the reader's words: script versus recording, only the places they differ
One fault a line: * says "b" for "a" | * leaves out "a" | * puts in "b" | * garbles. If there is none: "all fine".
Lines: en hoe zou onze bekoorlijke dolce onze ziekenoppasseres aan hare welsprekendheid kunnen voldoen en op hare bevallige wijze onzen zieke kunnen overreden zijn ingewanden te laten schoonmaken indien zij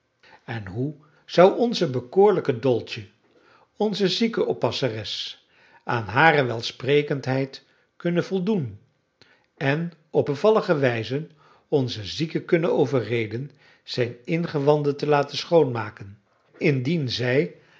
* leaves out "hare"